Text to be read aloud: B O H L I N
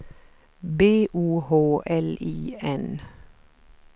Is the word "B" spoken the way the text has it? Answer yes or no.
yes